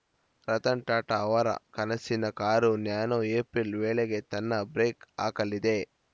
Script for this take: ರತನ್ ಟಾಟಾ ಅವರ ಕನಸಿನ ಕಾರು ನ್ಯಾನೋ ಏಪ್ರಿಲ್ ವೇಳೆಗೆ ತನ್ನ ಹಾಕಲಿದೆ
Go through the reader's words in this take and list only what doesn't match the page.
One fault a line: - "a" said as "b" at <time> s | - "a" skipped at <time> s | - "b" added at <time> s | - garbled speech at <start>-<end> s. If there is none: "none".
- "ಬ್ರೇಕ್" added at 4.7 s